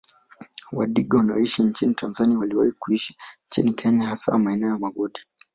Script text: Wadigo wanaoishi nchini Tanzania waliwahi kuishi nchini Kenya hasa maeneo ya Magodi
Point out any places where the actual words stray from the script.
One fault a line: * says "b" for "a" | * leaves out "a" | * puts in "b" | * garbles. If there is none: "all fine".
all fine